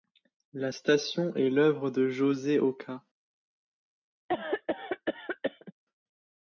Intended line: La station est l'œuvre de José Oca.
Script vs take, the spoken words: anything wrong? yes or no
no